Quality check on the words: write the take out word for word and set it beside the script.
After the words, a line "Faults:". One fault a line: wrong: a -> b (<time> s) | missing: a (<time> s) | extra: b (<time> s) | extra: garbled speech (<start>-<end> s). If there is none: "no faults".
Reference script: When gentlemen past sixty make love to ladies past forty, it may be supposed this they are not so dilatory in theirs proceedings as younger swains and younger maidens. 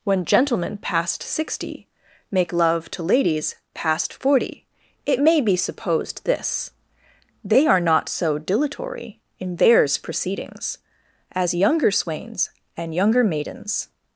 When gentlemen past sixty make love to ladies past forty, it may be supposed this they are not so dilatory in theirs proceedings as younger swains and younger maidens.
Faults:
no faults